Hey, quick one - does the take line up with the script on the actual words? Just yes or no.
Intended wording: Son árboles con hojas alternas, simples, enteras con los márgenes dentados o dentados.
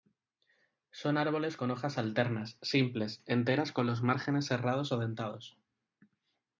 no